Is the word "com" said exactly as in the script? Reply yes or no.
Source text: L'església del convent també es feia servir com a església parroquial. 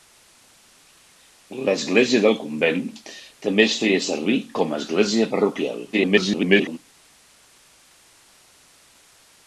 yes